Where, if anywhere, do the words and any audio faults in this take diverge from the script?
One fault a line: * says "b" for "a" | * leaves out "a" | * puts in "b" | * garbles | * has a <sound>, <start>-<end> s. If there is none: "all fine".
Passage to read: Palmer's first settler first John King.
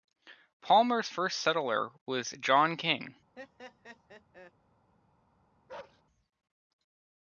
* says "was" for "first"
* has a laugh, 3.4-4.5 s
* has a bark, 5.7-6.0 s